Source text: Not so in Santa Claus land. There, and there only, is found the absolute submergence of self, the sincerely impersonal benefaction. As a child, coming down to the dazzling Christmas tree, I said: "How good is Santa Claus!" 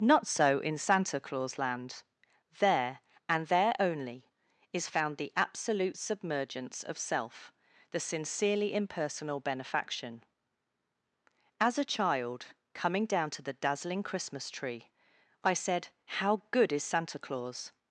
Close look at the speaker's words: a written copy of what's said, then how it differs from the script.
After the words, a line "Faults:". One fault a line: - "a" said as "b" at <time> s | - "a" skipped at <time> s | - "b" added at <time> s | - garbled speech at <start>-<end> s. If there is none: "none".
Not so in Santa Claus land. There, and there only, is found the absolute submergence of self, the sincerely impersonal benefaction. As a child, coming down to the dazzling Christmas tree, I said: "How good is Santa Claus!"
Faults:
none